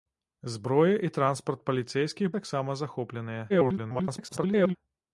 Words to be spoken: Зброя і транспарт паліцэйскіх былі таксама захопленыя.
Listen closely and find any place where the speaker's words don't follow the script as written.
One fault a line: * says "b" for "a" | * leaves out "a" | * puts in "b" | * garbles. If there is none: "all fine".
* leaves out "былі"
* garbles